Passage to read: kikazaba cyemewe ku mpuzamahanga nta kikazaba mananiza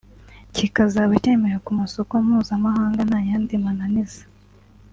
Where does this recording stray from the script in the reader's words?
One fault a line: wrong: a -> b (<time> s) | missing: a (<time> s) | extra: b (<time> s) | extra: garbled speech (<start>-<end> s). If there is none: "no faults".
extra: masoko (1.8 s)
wrong: kikazaba -> yandi (3.3 s)